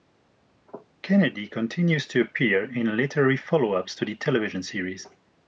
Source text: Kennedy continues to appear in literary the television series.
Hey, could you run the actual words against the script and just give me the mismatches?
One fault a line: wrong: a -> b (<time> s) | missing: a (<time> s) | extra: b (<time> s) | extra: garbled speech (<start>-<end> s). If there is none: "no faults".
extra: follow ups to (3.4 s)